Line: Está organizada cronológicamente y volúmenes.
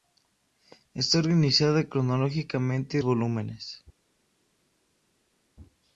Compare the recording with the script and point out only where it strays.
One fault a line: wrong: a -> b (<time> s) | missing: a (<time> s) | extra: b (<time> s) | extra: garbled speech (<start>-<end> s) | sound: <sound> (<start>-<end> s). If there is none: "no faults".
no faults